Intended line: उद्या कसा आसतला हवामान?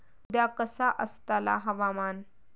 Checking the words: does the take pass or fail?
pass